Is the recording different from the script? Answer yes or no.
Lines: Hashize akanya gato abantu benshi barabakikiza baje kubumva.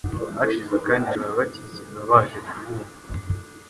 yes